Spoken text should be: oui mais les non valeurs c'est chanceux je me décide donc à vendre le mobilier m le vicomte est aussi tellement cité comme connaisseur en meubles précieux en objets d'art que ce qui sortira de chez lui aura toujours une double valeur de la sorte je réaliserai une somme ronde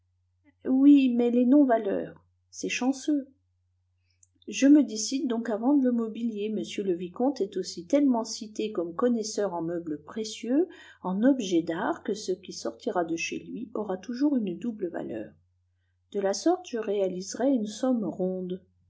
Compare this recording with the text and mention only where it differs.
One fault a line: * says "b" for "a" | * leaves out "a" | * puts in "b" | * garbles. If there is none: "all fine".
all fine